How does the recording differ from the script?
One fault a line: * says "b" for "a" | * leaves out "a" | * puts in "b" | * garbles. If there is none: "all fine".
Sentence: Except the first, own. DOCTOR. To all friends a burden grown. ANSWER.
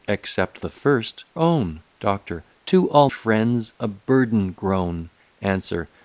all fine